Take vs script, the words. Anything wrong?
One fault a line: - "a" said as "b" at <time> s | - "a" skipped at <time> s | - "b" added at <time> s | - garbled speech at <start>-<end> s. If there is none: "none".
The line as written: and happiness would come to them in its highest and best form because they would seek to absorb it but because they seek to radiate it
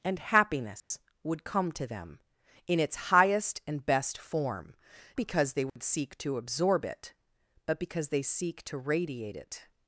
none